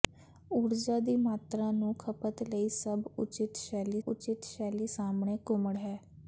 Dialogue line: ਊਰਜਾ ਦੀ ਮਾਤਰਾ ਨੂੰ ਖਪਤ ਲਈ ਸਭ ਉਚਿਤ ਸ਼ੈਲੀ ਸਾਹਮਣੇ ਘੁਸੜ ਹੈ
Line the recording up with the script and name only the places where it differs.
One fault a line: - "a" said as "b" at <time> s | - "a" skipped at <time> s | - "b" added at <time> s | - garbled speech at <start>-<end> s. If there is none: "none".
- "ਉਚਿਤ ਸ਼ੈਲੀ" added at 4.1 s